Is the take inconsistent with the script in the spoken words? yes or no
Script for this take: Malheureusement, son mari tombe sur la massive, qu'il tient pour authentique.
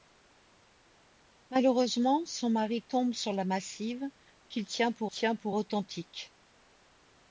yes